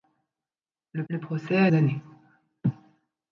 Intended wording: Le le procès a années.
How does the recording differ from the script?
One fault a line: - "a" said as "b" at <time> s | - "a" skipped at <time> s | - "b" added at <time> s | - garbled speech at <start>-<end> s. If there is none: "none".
none